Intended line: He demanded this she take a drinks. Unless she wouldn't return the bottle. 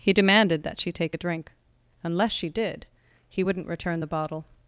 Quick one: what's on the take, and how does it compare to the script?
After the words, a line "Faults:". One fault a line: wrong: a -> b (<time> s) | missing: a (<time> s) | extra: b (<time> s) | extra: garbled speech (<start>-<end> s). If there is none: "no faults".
He demanded that she take a drink. Unless she did, he wouldn't return the bottle.
Faults:
wrong: this -> that (0.6 s)
wrong: drinks -> drink (1.2 s)
extra: did he (2.5 s)